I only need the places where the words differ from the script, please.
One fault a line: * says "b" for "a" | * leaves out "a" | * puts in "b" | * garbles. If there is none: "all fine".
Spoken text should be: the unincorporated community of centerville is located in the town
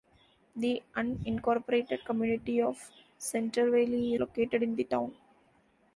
* leaves out "is"